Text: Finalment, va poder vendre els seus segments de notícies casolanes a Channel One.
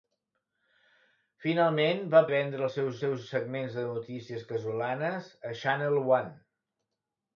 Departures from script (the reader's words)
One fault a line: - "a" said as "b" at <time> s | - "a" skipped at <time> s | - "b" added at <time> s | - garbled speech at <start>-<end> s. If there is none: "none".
- "poder" skipped at 2.2 s
- "seus" added at 3.0 s